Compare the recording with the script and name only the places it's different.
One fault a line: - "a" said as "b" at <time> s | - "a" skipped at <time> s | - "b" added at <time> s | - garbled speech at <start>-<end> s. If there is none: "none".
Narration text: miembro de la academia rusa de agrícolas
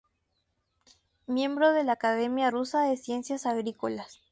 - "ciencias" added at 3.0 s